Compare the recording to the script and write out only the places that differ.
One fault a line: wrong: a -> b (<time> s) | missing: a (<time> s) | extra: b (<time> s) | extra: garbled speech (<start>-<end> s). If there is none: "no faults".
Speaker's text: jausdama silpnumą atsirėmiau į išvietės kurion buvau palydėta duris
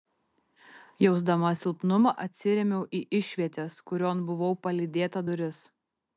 no faults